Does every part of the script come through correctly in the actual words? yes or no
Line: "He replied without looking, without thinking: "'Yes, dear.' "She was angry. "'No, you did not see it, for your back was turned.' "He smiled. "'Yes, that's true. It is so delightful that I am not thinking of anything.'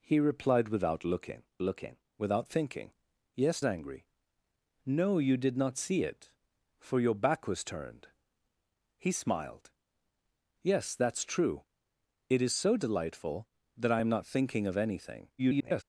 no